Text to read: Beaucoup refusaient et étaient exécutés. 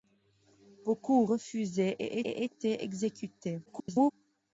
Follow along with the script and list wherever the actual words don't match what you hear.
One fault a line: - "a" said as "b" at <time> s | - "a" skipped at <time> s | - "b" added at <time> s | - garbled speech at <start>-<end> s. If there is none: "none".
- "et" added at 2.2 s
- garbled speech at 3.7-4.1 s